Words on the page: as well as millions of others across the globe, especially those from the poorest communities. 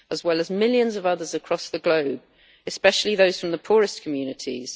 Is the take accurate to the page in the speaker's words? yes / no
yes